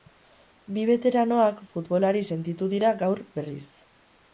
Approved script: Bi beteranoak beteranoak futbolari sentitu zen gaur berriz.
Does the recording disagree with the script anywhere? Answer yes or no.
yes